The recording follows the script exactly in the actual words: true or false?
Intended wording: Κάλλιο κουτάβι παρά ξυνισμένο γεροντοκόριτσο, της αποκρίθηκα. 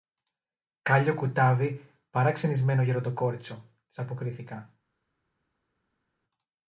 true